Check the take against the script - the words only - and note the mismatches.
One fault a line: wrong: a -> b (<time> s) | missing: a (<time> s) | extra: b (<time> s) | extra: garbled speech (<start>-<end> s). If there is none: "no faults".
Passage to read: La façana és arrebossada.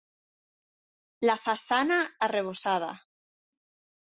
missing: és (2.0 s)